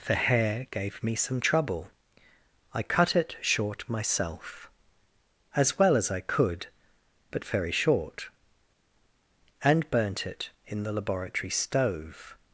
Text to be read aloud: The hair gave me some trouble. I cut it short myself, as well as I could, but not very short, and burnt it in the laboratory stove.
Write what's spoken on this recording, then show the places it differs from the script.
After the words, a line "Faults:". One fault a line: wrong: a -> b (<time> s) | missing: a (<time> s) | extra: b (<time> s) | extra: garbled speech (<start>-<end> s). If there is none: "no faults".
The hair gave me some trouble. I cut it short myself, as well as I could, but very short, and burnt it in the laboratory stove.
Faults:
missing: not (7.4 s)